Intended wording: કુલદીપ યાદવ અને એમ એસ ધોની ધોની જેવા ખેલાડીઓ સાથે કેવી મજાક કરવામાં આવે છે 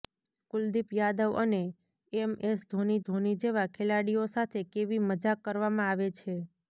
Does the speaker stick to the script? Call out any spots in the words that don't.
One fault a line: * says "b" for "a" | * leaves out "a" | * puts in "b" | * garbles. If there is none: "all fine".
all fine